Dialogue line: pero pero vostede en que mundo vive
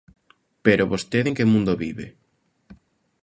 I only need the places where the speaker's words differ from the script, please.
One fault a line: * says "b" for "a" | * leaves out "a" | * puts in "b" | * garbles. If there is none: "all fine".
* leaves out "pero"